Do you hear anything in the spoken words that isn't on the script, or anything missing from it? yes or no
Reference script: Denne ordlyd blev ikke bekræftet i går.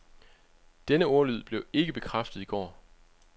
no